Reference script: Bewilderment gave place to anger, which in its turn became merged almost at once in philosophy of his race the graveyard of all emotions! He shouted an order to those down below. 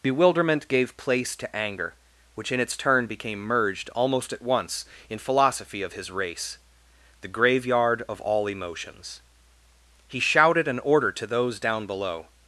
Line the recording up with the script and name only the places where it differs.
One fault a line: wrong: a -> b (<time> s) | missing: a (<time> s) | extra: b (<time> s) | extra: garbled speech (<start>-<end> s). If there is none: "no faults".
no faults